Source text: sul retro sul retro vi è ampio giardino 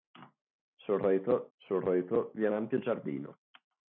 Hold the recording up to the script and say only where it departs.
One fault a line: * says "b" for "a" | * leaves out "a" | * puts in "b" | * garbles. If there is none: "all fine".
all fine